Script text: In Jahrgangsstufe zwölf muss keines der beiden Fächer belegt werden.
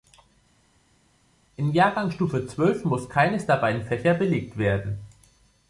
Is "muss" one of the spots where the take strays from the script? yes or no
no